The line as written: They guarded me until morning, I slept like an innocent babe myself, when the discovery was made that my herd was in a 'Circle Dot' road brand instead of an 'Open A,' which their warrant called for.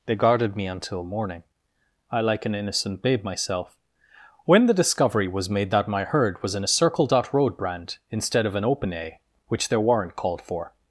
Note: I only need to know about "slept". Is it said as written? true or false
false